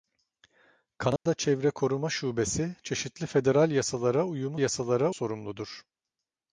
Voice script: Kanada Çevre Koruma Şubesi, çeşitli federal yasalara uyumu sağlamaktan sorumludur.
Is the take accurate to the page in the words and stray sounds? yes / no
no